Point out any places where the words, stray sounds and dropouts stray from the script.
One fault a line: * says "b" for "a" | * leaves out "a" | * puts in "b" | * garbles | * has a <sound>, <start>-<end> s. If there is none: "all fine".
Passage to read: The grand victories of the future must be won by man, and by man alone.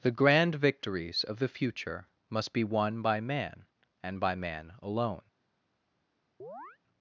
* has a chirp, 6.4-6.8 s